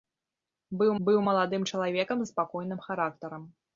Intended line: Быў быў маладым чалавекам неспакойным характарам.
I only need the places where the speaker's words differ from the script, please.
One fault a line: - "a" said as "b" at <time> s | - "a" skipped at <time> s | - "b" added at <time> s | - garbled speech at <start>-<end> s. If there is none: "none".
none